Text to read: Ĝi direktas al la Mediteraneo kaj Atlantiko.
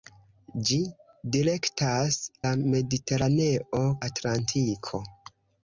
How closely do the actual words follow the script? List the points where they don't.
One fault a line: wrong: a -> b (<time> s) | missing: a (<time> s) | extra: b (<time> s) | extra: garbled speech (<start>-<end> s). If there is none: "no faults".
missing: al (2.2 s)
missing: kaj (3.9 s)